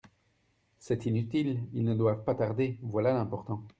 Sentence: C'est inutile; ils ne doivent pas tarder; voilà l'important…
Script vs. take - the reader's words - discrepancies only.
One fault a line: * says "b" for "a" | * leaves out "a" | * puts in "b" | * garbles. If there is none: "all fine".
all fine